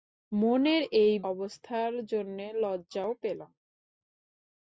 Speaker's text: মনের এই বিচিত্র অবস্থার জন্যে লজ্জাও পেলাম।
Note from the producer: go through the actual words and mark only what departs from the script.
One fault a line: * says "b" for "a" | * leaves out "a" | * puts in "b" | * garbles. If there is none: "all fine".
* leaves out "বিচিত্র"